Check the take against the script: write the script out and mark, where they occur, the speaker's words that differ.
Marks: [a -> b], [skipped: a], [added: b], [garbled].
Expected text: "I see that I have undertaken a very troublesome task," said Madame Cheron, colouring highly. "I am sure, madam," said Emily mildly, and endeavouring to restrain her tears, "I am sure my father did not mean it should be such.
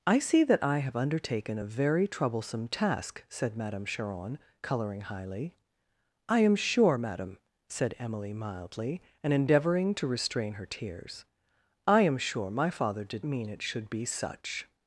"I see that I have undertaken a very troublesome task," said Madame Cheron, colouring highly. "I am sure, madam," said Emily mildly, and endeavouring to restrain her tears, "I am sure my father did [skipped: not] mean it should be such.